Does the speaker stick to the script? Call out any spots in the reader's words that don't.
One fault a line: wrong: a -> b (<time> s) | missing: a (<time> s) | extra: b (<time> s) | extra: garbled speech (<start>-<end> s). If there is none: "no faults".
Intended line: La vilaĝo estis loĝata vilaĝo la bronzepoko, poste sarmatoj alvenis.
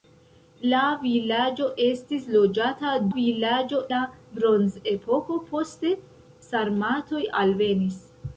no faults